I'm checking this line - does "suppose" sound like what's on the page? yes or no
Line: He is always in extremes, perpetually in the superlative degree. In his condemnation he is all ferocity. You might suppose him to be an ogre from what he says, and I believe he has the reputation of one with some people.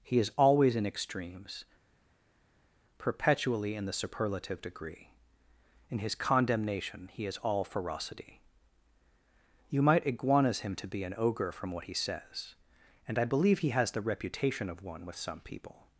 no